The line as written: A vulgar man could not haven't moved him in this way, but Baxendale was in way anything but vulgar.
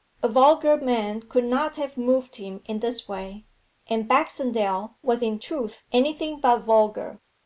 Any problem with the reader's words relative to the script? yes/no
yes